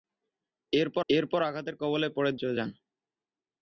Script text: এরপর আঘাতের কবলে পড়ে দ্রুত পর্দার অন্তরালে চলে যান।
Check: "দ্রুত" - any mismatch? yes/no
yes